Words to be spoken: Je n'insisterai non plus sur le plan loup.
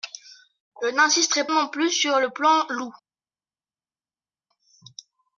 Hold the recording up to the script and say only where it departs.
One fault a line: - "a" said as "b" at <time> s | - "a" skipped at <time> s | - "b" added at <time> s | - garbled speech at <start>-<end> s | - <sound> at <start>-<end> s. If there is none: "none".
none